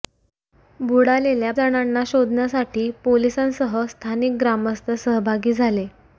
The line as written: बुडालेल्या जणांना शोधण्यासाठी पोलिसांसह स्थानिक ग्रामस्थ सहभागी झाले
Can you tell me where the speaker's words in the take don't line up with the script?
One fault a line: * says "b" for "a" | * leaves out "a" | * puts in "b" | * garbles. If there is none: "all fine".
all fine